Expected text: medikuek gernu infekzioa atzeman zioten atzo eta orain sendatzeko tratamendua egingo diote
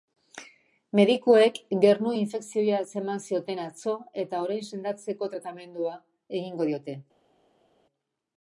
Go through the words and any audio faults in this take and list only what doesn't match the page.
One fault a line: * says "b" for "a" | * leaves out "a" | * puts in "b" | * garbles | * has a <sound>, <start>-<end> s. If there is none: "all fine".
all fine